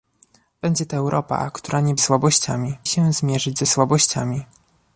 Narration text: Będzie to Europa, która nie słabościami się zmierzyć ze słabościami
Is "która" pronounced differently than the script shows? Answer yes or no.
no